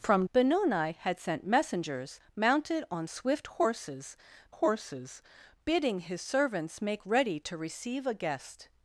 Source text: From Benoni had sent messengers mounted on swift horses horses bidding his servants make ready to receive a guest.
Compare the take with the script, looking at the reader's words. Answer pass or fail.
pass